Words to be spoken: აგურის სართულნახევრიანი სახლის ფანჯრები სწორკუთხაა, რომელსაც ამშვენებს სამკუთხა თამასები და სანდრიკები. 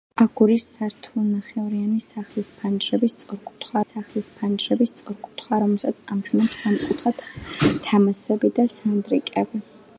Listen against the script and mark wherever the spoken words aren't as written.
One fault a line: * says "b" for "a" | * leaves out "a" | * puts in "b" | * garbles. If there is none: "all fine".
* puts in "სახლის ფანჯრები სწორკუთხაა"